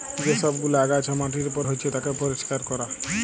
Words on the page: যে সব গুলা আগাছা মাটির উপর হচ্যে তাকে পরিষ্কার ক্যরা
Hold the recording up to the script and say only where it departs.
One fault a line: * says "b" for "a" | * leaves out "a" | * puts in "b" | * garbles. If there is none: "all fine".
all fine